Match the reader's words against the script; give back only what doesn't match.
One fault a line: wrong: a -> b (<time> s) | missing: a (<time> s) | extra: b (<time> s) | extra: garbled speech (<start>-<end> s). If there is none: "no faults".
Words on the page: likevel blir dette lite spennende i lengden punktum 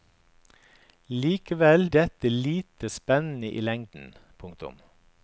missing: blir (1.9 s)